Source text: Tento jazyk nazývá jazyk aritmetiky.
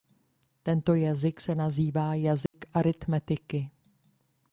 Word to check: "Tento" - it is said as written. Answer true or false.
true